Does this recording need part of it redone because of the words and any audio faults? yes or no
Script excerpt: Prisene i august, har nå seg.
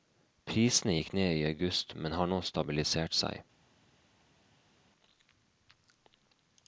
yes